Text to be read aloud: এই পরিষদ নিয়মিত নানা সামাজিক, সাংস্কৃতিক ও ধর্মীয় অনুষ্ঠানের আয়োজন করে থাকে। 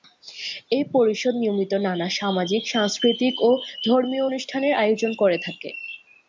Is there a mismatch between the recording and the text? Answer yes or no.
no